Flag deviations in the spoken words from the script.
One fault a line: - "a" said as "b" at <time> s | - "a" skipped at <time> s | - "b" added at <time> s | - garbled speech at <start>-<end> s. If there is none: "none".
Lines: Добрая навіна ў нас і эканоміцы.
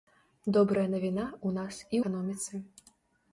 none